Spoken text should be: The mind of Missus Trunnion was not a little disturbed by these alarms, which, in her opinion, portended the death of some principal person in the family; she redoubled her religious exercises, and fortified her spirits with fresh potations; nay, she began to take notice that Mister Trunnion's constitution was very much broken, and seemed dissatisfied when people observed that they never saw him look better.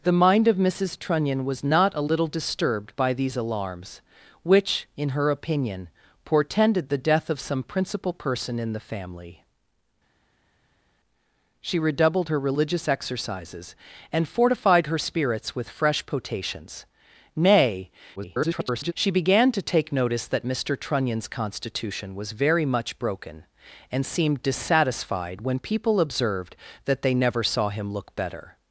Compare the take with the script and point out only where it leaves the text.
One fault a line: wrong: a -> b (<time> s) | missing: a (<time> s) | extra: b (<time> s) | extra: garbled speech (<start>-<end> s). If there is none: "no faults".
extra: garbled speech (18.2-18.9 s)